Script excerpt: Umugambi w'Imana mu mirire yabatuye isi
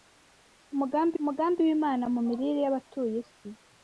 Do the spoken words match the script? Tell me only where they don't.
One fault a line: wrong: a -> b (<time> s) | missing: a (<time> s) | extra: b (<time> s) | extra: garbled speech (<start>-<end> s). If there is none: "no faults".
extra: umugambi (1.2 s)